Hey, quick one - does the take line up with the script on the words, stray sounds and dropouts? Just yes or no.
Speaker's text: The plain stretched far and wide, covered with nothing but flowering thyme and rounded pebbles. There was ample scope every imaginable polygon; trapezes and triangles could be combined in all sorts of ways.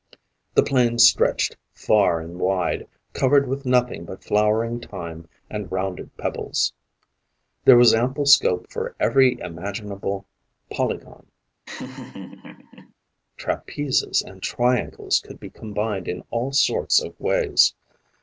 no